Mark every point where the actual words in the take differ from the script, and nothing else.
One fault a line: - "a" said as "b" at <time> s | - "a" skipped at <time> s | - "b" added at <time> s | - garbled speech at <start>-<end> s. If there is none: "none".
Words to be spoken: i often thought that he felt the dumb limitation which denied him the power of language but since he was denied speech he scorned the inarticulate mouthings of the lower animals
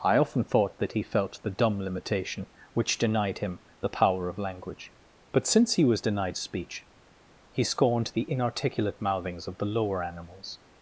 none